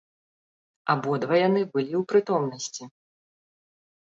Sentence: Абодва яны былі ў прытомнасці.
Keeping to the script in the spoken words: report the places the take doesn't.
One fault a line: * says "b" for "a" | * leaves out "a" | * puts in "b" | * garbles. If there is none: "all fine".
all fine